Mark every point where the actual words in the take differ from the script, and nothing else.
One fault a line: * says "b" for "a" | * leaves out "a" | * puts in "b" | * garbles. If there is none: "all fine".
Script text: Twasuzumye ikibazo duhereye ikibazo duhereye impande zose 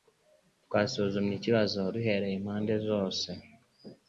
* leaves out "ikibazo duhereye"